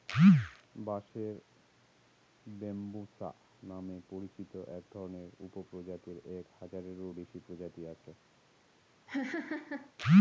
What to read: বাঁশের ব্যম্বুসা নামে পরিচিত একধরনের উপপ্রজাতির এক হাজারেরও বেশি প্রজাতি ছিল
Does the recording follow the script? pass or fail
fail